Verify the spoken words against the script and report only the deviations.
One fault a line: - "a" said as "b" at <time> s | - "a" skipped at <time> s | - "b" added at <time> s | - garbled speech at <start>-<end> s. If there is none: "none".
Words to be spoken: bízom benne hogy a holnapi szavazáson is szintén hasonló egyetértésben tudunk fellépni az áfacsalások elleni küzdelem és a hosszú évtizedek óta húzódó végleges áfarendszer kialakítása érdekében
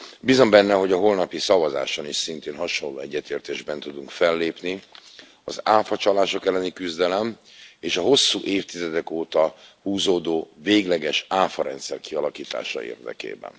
none